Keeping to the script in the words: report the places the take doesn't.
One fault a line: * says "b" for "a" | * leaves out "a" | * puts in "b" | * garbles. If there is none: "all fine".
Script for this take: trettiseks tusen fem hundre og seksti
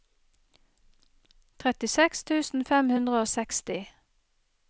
all fine